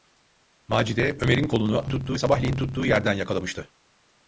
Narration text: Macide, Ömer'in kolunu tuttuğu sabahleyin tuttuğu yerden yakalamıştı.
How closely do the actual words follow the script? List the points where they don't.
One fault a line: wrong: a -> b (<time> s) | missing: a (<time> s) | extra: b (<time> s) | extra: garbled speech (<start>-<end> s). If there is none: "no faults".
no faults